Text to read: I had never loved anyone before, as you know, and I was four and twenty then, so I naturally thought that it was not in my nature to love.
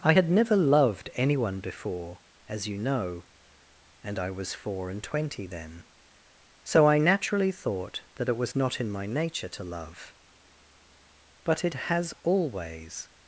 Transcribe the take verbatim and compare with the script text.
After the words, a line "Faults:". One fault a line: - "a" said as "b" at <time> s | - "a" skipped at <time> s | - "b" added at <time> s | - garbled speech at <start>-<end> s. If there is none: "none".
I had never loved anyone before, as you know, and I was four and twenty then, so I naturally thought that it was not in my nature to love. But it has always
Faults:
- "But it has always" added at 11.4 s